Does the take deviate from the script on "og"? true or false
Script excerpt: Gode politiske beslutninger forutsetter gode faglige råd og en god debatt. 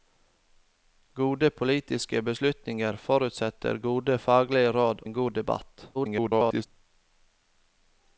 true